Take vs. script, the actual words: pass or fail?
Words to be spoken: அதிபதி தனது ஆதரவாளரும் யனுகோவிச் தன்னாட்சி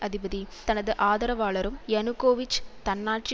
pass